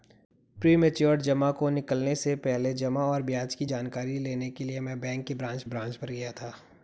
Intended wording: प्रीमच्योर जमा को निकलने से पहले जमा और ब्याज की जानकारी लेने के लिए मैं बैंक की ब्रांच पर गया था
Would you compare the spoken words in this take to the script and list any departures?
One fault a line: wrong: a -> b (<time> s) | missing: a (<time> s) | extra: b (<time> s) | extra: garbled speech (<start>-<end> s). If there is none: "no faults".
extra: ब्रांच (5.6 s)